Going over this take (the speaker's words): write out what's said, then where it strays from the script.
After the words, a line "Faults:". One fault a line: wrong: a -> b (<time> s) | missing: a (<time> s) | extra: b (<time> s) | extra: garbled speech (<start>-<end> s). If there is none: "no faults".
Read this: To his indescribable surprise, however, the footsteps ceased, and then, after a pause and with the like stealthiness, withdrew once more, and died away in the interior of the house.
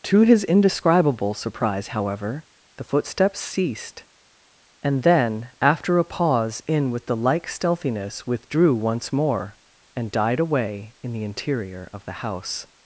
To his indescribable surprise, however, the footsteps ceased, and then, after a pause in with the like stealthiness, withdrew once more, and died away in the interior of the house.
Faults:
wrong: and -> in (6.7 s)